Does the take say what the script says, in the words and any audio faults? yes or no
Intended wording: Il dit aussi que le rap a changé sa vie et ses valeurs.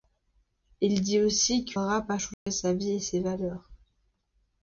no